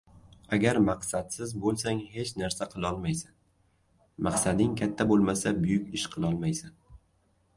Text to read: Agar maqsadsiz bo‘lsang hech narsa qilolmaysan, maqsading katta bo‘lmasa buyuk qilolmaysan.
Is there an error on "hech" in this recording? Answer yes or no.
no